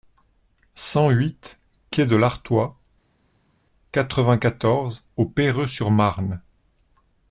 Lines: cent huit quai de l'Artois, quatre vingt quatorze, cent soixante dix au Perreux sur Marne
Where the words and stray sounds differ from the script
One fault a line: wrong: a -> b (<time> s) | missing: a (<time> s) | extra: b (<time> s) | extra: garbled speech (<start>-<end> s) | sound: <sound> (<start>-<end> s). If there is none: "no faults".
missing: cent soixante dix (5.1 s)